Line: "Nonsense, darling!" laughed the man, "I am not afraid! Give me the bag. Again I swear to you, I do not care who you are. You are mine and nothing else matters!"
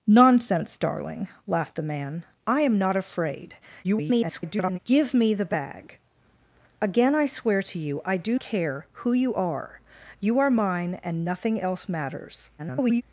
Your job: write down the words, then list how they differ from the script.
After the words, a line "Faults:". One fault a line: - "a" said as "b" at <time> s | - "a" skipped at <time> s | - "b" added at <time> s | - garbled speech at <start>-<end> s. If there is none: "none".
"Nonsense, darling!" laughed the man, "I am not afraid! [garbled] Give me the bag. Again I swear to you, I do care who you are. You are mine and nothing else matters!" [garbled]
Faults:
- garbled speech at 3.8-4.8 s
- "not" skipped at 8.4 s
- garbled speech at 12.6-13.0 s